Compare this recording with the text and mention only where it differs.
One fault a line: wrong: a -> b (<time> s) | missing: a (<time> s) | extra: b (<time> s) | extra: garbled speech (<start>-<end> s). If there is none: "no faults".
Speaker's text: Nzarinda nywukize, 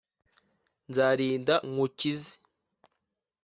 no faults